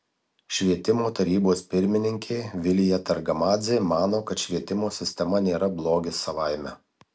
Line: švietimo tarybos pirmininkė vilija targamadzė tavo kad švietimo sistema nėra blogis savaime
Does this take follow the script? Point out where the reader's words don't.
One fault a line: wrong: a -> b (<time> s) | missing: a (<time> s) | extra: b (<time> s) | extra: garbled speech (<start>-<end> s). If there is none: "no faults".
wrong: tavo -> mano (3.9 s)